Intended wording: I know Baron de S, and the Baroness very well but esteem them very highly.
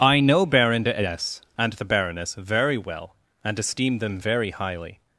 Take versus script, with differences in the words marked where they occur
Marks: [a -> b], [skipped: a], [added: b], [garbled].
I know Baron de S, and the Baroness very well [but -> and] esteem them very highly.